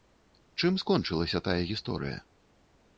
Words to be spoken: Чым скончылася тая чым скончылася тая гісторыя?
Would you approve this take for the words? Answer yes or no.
no